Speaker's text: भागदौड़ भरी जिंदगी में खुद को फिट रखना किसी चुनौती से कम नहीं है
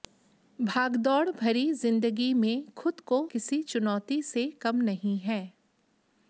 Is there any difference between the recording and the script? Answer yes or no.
yes